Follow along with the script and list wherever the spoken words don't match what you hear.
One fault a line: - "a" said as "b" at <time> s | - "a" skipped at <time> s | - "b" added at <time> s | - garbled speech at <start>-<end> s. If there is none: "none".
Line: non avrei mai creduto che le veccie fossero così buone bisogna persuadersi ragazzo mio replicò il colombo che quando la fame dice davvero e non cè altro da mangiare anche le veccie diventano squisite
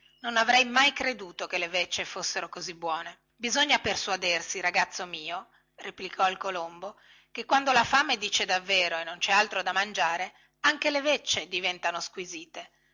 none